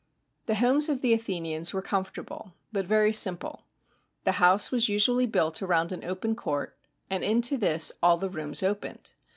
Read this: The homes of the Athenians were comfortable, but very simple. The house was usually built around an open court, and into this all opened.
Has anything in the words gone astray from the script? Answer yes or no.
yes